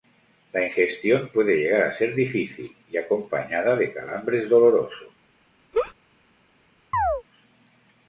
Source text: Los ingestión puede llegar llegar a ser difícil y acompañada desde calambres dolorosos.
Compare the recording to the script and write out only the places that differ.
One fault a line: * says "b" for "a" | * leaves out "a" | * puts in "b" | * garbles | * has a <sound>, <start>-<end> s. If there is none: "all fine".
* says "La" for "Los"
* leaves out "llegar"
* says "de" for "desde"
* has a laugh, 5.7-5.9 s
* has a chirp, 6.9-7.2 s